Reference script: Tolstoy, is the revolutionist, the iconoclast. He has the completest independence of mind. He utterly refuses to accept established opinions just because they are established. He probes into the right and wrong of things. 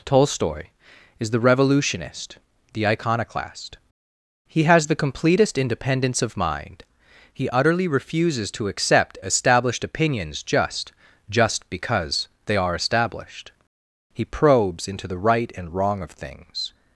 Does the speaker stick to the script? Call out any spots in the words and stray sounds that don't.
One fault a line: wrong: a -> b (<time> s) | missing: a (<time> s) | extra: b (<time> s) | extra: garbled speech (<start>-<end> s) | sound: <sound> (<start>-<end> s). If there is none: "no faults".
extra: just (11.3 s)